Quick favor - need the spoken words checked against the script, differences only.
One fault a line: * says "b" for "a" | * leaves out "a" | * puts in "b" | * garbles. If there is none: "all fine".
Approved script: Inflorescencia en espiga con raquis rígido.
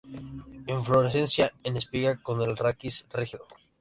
* puts in "el"